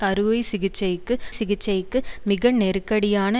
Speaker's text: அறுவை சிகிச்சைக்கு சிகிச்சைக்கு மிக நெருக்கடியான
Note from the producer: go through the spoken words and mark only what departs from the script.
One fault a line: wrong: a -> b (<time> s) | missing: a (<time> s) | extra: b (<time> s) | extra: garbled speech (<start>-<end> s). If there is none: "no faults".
no faults